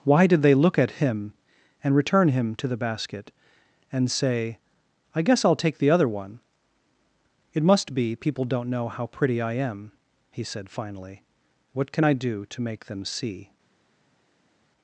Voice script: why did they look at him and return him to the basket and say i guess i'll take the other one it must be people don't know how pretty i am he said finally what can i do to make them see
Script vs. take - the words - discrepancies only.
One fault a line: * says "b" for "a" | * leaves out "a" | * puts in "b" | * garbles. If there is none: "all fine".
all fine